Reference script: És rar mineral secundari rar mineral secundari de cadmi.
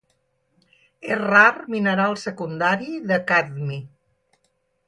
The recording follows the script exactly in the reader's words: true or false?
false